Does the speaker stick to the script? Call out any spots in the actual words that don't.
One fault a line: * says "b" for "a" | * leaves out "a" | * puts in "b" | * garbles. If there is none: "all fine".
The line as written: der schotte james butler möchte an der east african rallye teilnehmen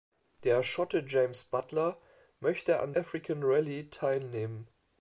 * leaves out "der east"